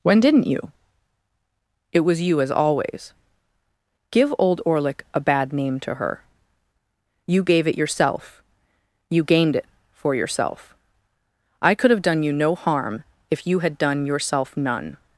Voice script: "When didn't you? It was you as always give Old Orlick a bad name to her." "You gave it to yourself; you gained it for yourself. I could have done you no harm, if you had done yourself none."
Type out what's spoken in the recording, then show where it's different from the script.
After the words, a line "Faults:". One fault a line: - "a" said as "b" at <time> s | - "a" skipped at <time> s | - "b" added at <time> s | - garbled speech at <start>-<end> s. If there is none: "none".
"When didn't you? It was you as always give Old Orlick a bad name to her." "You gave it yourself; you gained it for yourself. I could have done you no harm, if you had done yourself none."
Faults:
- "to" skipped at 7.8 s